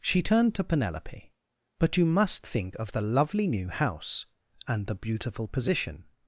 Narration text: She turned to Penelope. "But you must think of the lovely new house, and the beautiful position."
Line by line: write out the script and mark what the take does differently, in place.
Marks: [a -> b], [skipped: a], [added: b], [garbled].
She turned to Penelope. "But you must think of the lovely new house, and the beautiful position."